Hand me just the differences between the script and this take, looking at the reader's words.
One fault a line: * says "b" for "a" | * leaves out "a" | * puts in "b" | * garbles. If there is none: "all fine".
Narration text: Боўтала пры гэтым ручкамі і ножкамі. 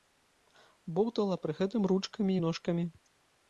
all fine